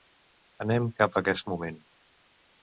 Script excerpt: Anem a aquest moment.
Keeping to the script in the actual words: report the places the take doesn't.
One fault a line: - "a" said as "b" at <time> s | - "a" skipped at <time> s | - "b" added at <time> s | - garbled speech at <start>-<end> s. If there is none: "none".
- "cap" added at 1.0 s